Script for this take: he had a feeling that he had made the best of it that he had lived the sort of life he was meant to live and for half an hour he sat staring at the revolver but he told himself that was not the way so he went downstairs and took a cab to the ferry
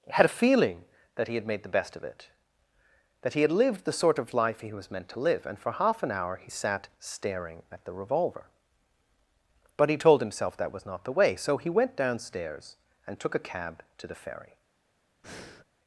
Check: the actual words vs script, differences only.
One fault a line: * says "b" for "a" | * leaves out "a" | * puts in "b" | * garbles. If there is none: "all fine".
* leaves out "he"